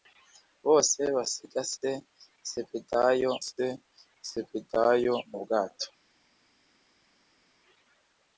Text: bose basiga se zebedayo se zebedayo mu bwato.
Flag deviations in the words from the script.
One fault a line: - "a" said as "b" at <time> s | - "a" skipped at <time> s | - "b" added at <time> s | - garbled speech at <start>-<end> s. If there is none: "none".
none